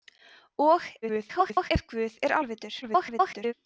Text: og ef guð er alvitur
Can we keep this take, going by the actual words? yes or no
no